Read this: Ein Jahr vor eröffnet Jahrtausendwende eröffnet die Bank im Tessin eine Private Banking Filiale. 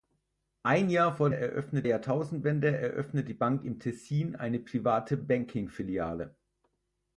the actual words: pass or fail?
pass